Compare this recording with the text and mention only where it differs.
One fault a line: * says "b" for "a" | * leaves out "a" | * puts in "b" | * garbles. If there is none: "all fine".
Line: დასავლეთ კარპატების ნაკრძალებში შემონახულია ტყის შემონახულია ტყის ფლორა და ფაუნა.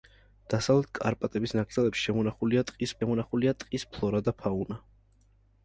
all fine